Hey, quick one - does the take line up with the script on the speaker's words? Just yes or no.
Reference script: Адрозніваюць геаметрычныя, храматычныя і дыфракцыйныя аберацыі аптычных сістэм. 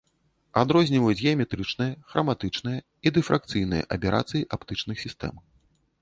yes